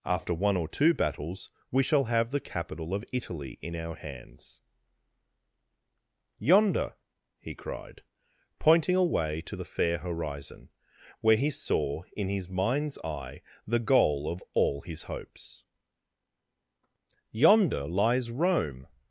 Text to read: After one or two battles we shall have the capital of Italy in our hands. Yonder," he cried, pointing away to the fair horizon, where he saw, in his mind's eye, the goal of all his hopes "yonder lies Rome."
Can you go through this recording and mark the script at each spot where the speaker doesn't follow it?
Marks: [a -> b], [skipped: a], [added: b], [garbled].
After one or two battles we shall have the capital of Italy in our hands. Yonder," he cried, pointing away to the fair horizon, where he saw, in his mind's eye, the goal of all his hopes "yonder lies Rome."